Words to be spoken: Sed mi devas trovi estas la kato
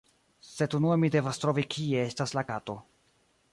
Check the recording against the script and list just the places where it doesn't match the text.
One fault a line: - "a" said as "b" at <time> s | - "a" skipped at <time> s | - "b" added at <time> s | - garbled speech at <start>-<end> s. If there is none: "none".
- "unue" added at 0.8 s
- "kie" added at 1.8 s